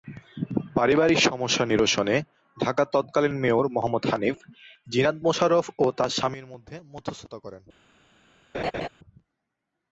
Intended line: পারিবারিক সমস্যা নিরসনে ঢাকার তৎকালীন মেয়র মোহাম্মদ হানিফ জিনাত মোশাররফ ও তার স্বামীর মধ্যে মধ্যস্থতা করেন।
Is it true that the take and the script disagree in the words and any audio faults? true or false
true